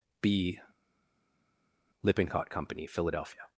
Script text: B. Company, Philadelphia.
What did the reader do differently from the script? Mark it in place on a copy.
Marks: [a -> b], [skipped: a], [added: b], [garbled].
B. [added: Lippincott] Company, Philadelphia.